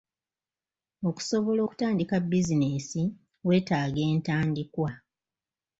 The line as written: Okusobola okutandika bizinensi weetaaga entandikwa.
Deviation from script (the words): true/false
false